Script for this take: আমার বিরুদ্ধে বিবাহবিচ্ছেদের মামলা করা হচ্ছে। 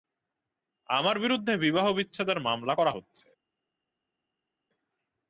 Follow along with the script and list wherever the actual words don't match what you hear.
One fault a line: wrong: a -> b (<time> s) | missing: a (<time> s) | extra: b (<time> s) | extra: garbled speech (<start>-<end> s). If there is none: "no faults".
no faults